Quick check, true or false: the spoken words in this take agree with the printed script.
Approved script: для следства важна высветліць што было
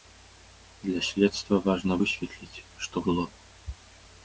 true